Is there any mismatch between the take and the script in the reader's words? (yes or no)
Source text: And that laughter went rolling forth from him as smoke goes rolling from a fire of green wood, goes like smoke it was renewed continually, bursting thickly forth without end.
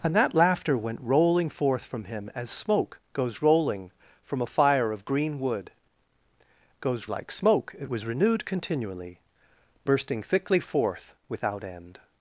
no